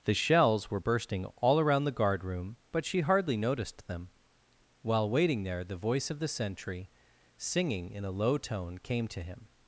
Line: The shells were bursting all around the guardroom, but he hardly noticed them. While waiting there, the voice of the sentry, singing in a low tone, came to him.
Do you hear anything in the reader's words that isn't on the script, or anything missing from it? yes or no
yes